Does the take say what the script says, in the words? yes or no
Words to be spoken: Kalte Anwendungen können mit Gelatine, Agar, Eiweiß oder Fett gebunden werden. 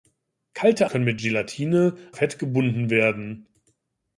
no